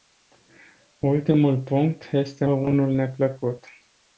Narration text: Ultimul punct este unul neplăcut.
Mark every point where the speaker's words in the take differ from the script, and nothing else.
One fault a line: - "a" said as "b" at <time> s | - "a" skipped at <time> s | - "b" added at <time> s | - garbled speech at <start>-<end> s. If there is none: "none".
none